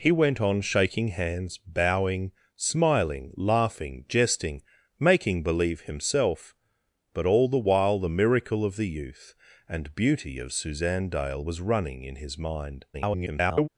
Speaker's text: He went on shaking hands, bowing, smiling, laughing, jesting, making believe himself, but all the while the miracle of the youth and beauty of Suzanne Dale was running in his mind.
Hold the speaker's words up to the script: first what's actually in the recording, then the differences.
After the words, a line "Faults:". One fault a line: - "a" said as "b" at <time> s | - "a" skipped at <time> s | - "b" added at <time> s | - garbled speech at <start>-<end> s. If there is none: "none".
He went on shaking hands, bowing, smiling, laughing, jesting, making believe himself, but all the while the miracle of the youth and beauty of Suzanne Dale was running in his mind. [garbled]
Faults:
- garbled speech at 12.9-13.7 s